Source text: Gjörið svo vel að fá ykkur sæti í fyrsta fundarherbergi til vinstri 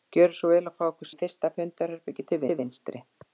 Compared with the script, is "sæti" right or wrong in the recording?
wrong